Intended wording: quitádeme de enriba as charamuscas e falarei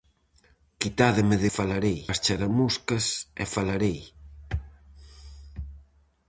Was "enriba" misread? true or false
true